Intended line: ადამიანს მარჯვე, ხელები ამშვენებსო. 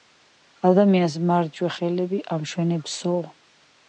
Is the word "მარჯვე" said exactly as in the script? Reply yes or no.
yes